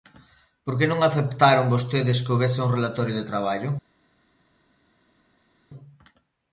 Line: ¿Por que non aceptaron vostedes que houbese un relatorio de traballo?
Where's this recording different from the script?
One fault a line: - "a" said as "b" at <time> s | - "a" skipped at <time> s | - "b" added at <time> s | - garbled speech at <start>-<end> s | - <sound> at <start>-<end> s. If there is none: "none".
none